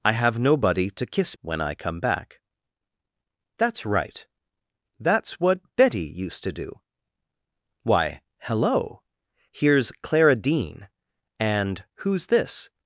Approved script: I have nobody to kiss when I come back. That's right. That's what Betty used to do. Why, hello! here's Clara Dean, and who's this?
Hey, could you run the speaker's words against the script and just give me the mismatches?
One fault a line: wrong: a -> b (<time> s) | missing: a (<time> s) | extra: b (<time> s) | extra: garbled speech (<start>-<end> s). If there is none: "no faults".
no faults